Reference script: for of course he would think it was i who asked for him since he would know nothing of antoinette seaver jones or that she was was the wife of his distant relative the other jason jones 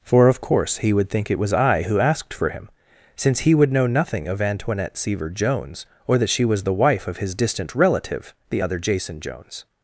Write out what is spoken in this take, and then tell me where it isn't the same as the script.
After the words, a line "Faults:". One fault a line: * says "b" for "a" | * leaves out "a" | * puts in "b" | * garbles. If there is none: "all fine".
for of course he would think it was i who asked for him since he would know nothing of antoinette seaver jones or that she was the wife of his distant relative the other jason jones
Faults:
* leaves out "was"